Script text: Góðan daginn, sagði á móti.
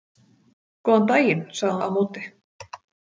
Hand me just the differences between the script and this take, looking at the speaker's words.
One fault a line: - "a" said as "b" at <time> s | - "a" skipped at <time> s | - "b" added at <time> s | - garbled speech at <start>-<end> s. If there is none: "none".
none